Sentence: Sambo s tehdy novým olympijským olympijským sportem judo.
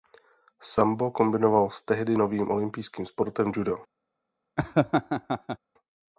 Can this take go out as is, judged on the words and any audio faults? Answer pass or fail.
fail